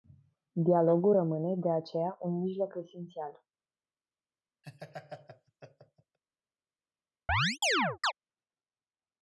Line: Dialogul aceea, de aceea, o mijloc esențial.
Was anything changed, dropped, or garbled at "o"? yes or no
yes